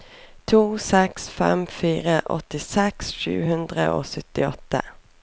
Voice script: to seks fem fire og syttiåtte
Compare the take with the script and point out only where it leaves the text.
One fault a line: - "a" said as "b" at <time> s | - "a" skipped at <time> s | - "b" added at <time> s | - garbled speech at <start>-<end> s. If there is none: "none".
- "åttiseks sju hundre" added at 2.4 s